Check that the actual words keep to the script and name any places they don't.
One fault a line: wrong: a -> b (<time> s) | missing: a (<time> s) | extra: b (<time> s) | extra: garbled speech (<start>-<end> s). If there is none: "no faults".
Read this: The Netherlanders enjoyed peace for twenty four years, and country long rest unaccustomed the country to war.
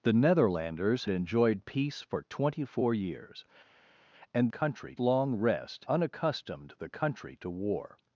no faults